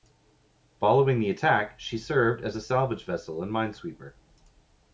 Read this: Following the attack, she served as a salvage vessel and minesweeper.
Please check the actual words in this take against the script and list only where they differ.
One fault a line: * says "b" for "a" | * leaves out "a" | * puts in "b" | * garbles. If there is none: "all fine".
all fine